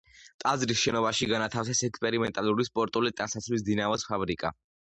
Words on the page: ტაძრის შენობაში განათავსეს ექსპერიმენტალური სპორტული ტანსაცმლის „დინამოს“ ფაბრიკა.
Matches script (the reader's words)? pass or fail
pass